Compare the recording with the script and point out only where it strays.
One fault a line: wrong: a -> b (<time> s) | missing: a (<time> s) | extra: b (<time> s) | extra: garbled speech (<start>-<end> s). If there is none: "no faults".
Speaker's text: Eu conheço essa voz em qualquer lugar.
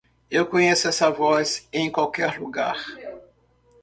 no faults